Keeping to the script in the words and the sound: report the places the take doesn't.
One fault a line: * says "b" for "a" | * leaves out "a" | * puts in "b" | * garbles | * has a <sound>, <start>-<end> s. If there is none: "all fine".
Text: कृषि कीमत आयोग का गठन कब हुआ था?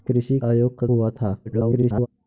* leaves out "कीमत"
* leaves out "गठन कब"
* garbles